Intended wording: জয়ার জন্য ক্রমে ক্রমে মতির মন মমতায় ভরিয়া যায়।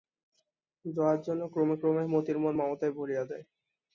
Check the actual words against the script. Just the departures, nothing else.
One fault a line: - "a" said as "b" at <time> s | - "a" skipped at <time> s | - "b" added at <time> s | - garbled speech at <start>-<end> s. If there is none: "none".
none